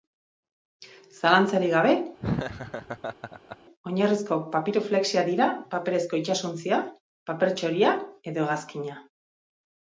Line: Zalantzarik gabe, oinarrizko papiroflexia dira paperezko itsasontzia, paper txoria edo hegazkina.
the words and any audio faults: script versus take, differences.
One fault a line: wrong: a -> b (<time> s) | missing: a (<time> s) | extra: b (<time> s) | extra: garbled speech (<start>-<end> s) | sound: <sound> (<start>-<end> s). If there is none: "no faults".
sound: laugh (2.2-3.6 s)